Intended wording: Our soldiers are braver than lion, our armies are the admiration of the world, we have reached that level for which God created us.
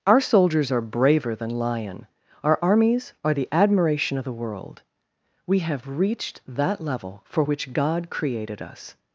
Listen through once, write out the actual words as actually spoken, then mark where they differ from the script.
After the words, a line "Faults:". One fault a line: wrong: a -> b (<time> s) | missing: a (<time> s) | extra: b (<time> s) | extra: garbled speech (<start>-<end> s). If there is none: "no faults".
Our soldiers are braver than lion, our armies are the admiration of the world, we have reached that level for which God created us.
Faults:
no faults